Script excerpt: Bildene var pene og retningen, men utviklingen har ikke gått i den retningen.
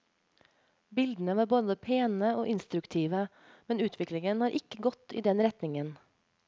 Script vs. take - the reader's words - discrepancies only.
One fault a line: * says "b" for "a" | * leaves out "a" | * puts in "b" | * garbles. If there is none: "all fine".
* puts in "både"
* says "instruktive" for "retningen"